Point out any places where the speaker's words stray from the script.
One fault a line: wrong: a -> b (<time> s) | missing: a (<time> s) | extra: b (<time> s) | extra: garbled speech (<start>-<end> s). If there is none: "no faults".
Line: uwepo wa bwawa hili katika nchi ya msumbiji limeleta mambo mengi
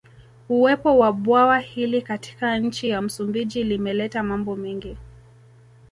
no faults